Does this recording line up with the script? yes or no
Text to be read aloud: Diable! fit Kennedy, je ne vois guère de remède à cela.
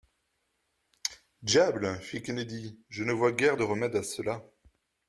yes